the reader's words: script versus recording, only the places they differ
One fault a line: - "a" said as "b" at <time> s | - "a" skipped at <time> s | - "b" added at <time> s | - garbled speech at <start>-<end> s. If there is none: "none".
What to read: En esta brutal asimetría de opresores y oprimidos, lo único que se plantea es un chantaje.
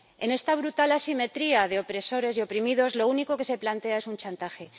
none